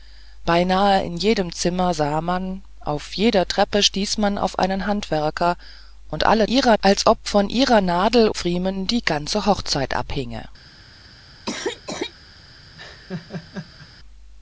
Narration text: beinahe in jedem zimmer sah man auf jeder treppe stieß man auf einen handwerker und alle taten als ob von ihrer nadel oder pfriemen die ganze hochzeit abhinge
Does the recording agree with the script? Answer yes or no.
no